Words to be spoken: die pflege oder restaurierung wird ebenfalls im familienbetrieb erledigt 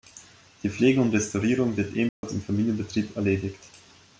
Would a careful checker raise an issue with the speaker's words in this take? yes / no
yes